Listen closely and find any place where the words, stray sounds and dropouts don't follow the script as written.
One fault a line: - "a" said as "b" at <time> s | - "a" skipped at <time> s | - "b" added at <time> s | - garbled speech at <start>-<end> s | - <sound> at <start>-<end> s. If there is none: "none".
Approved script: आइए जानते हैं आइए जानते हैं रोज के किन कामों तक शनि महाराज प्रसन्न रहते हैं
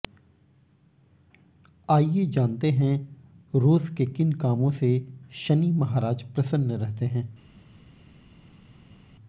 - "आइए जानते हैं" skipped at 3.0 s
- "तक" said as "से" at 4.7 s